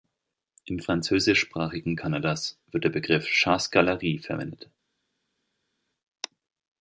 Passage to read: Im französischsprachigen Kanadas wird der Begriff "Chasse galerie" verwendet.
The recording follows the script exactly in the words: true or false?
true